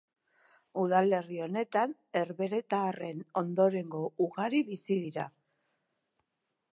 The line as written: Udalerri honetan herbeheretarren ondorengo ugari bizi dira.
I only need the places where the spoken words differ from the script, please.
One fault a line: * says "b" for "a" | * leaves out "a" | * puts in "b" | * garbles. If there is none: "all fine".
all fine